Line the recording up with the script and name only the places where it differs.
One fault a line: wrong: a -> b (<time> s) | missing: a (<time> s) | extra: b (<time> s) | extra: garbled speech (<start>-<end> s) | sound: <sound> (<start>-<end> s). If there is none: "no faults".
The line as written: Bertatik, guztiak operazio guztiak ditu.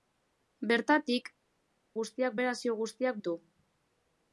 no faults